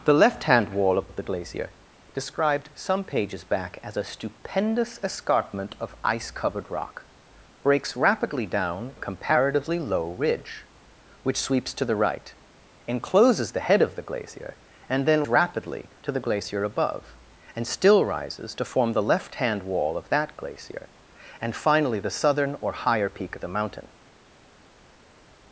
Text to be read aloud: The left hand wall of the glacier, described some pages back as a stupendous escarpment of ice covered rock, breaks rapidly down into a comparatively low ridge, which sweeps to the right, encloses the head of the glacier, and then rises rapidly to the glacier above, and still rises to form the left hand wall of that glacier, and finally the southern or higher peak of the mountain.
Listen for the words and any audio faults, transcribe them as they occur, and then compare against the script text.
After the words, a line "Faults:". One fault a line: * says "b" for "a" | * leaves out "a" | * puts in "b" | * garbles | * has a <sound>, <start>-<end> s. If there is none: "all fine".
The left hand wall of of the glacier, described some pages back as a stupendous escarpment of ice covered rock, breaks rapidly down a comparatively low ridge, which sweeps to the right, encloses the head of the glacier, and then rapidly to the glacier above, and still rises to form the left hand wall of that glacier, and finally the southern or higher peak of the mountain.
Faults:
* puts in "of"
* leaves out "into"
* leaves out "rises"